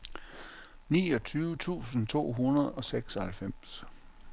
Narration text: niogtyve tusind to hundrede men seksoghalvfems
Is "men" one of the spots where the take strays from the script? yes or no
yes